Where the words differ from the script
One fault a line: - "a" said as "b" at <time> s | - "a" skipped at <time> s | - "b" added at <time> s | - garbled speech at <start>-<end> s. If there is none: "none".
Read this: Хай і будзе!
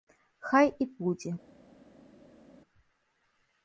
none